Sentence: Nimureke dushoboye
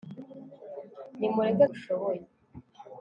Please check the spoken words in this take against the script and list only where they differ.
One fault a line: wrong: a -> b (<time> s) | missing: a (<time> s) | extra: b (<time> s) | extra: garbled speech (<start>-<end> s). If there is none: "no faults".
no faults